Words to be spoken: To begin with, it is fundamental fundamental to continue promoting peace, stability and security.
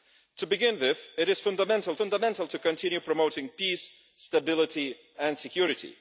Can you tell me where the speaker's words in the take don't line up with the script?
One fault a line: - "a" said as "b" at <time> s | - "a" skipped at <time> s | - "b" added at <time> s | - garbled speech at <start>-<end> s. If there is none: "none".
none